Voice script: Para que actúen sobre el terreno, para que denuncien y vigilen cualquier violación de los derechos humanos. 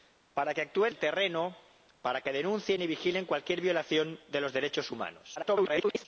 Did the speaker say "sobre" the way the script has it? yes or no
no